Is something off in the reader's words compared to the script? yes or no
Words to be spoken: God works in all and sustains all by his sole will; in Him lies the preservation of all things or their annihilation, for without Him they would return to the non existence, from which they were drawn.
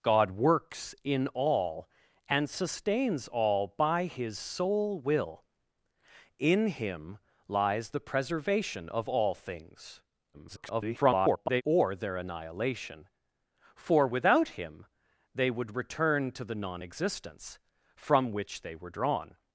yes